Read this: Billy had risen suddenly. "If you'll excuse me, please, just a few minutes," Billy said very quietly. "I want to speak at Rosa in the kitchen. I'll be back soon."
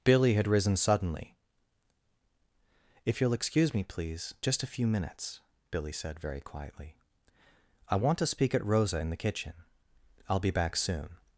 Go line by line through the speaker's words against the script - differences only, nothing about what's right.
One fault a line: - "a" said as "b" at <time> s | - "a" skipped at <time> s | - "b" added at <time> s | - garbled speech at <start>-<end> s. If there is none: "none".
none